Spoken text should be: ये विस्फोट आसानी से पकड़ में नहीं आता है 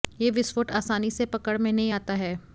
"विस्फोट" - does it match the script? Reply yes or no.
yes